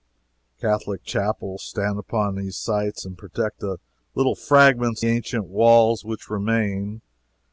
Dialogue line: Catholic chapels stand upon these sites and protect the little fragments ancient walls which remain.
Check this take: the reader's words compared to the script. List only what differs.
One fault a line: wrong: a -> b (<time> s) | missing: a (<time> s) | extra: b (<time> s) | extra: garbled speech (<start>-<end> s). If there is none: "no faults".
no faults